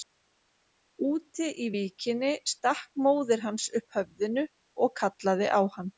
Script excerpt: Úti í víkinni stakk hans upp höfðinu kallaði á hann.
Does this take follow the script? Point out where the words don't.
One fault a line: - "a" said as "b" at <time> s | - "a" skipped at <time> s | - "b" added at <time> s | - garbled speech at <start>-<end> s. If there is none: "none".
- "móðir" added at 3.1 s
- "og" added at 4.9 s